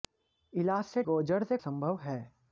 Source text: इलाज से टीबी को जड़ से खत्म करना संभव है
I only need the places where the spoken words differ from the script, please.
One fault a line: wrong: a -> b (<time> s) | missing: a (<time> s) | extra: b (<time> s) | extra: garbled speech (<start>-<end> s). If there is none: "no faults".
missing: टीबी (1.0 s)
missing: खत्म करना (1.6 s)